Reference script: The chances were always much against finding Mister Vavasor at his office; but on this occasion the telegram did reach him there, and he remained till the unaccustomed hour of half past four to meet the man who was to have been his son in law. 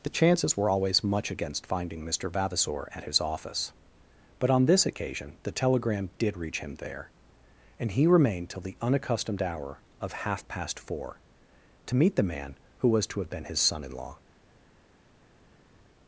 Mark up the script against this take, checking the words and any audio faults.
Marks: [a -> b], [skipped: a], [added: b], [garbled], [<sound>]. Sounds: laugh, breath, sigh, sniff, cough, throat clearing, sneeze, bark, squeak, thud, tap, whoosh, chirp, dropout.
The chances were always much against finding Mister Vavasor at his office; but on this occasion the telegram did reach him there, and he remained till the unaccustomed hour of half past four to meet the man who was to have been his son in law.